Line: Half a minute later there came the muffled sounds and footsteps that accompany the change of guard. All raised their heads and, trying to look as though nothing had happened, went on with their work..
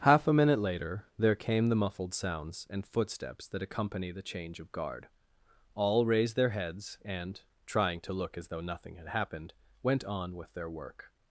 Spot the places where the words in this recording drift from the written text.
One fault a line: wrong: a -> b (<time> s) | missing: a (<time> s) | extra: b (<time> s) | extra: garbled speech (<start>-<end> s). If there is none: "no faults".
no faults